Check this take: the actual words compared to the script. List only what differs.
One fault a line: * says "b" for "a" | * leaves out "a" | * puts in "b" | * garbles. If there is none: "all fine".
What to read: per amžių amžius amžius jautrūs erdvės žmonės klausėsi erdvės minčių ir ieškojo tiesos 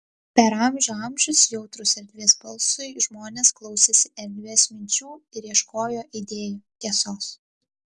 * leaves out "amžius"
* puts in "balsui"
* puts in "idėjų"